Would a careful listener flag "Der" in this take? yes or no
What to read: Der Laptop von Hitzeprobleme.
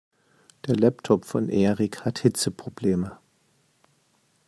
no